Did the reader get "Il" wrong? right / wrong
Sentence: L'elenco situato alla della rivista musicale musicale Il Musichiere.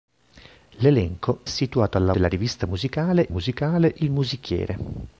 right